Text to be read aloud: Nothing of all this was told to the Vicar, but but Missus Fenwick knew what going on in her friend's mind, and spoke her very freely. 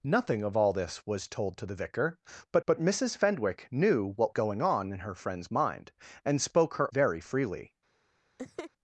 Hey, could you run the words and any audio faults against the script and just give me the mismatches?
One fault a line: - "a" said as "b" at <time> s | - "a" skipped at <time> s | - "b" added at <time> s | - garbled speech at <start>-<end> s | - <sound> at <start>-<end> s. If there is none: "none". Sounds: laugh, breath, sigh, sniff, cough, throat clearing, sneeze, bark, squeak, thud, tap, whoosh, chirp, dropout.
- laugh at 8.4-8.7 s